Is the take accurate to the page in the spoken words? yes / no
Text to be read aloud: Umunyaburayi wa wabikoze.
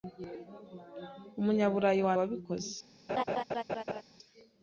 yes